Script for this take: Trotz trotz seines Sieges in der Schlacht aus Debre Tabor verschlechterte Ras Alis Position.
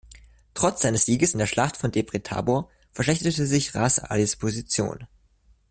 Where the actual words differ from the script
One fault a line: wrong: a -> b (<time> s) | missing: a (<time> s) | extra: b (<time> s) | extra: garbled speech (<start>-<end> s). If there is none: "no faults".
missing: trotz (0.8 s)
wrong: aus -> von (1.7 s)
extra: sich (3.5 s)